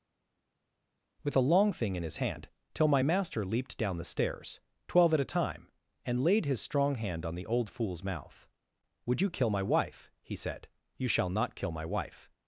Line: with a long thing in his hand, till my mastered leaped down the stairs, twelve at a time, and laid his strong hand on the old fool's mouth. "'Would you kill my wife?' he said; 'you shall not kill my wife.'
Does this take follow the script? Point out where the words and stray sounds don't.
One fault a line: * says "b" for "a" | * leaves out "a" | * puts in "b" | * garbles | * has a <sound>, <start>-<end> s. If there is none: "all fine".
* says "master" for "mastered"